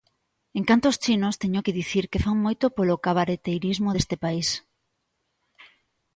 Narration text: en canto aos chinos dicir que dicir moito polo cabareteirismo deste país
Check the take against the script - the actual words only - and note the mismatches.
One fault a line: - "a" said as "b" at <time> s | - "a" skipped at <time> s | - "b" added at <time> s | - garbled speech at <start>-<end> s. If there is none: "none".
- "teño que" added at 1.4 s
- "dicir" said as "fan" at 2.2 s